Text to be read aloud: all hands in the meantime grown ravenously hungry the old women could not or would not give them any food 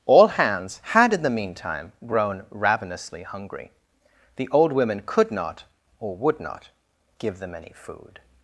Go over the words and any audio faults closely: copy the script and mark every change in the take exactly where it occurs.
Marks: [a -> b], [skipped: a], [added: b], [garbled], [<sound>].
all hands [added: had] in the meantime grown ravenously hungry the old women could not or would not give them any food